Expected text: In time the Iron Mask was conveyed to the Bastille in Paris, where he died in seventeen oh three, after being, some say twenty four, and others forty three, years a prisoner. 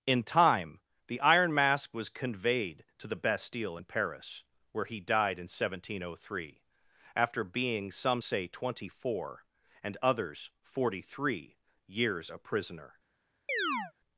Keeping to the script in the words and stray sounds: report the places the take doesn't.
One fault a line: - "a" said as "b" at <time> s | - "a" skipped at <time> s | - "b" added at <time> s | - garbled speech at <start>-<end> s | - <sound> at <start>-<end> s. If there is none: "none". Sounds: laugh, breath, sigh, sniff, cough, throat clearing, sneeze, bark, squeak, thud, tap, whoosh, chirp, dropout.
- chirp at 13.5-13.9 s